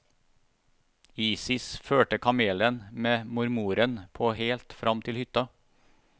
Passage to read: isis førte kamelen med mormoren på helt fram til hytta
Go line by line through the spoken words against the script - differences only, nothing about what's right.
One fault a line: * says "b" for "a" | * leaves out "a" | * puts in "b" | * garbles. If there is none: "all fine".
all fine